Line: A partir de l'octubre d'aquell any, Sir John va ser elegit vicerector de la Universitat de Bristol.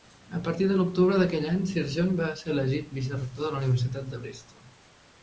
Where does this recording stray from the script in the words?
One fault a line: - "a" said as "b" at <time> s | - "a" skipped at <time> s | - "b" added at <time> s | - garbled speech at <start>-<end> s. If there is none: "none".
none